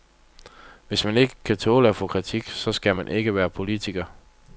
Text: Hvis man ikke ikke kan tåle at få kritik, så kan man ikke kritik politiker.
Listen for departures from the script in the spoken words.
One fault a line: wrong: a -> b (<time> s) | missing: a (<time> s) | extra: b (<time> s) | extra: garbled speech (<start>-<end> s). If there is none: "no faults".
missing: ikke (1.4 s)
wrong: kan -> skal (2.7 s)
wrong: kritik -> være (3.4 s)